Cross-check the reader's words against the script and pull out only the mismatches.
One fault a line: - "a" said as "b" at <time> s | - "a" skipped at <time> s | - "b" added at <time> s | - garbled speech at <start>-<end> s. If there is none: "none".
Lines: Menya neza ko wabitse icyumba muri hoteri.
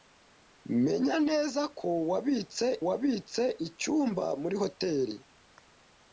- "wabitse" added at 2.9 s